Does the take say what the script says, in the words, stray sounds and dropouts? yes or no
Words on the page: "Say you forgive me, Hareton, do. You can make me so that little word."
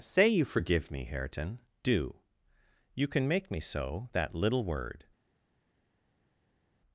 yes